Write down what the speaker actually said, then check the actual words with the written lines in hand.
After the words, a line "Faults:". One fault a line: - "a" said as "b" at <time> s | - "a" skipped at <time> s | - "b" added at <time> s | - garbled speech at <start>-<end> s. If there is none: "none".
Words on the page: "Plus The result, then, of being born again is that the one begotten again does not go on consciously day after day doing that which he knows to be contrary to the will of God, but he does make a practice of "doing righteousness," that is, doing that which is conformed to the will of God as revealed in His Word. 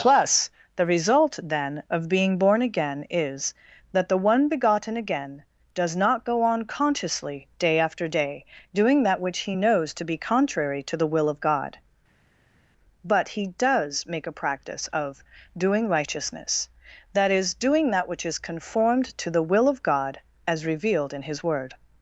"Plus The result, then, of being born again is that the one begotten again does not go on consciously day after day doing that which he knows to be contrary to the will of God, but he does make a practice of "doing righteousness," that is, doing that which is conformed to the will of God as revealed in His Word.
Faults:
none